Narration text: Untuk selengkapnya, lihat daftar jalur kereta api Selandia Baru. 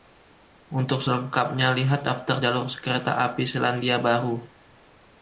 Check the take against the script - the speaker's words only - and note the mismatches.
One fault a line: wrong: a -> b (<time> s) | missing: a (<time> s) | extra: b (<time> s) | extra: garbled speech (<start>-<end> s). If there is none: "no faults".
no faults